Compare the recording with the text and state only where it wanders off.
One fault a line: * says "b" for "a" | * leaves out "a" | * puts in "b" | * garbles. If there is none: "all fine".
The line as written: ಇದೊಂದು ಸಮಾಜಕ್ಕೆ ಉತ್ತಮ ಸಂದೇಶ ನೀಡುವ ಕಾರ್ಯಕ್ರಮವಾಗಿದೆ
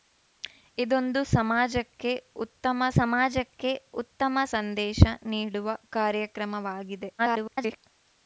* puts in "ಸಮಾಜಕ್ಕೆ ಉತ್ತಮ"
* garbles